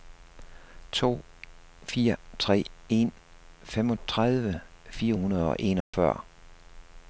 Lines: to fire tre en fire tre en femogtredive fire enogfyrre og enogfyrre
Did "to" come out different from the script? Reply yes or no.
no